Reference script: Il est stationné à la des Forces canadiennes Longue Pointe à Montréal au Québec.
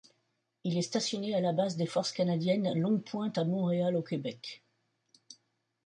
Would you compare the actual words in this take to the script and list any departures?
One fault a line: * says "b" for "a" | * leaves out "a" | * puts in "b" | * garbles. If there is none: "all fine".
* puts in "base"